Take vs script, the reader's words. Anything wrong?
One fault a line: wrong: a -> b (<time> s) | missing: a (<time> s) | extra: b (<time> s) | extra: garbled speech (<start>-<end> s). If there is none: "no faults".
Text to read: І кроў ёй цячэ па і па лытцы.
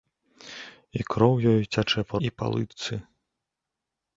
no faults